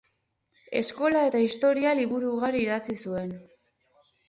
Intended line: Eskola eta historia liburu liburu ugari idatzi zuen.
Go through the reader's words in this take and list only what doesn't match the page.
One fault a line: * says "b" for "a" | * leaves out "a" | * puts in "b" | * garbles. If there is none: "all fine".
* leaves out "liburu"